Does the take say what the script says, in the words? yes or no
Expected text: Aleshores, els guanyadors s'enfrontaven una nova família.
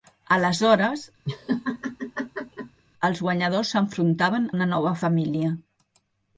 yes